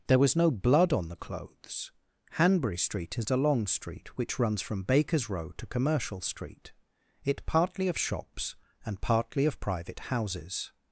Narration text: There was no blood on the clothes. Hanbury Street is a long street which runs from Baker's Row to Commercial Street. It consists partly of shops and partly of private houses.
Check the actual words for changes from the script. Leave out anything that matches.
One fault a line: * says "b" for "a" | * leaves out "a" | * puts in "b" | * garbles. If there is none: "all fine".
* leaves out "consists"